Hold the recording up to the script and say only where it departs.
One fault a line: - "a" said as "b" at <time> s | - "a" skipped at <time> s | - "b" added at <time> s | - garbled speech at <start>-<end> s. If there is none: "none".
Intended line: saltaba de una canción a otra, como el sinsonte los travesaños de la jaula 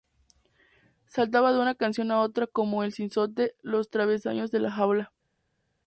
none